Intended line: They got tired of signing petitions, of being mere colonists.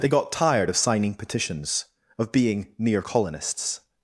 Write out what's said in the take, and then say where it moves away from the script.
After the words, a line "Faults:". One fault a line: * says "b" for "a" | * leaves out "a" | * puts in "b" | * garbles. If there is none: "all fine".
They got tired of signing petitions, of being mere colonists.
Faults:
all fine